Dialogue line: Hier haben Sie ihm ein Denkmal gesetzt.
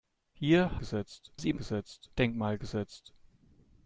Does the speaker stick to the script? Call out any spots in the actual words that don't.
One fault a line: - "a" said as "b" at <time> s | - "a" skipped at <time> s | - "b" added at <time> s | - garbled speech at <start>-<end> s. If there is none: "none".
- "haben" said as "gesetzt" at 0.7 s
- "ein" said as "gesetzt" at 1.5 s